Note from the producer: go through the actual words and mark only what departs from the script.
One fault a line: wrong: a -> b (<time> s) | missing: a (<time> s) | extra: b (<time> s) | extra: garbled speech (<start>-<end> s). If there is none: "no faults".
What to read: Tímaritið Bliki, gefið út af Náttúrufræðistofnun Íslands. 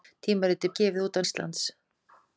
missing: Bliki (0.7 s)
missing: Náttúrufræðistofnun (1.3 s)